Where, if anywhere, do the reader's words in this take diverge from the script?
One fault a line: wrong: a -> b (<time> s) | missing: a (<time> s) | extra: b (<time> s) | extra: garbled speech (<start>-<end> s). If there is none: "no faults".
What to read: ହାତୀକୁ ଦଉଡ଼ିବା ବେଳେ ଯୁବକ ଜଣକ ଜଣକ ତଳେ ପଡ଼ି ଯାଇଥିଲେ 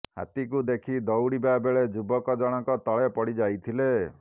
extra: ଦେଖି (0.7 s)
missing: ଜଣକ (2.8 s)